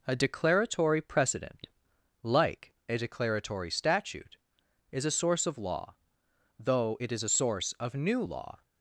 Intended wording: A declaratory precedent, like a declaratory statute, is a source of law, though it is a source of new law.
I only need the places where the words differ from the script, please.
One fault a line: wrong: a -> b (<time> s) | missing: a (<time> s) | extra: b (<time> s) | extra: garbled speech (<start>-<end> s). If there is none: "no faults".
no faults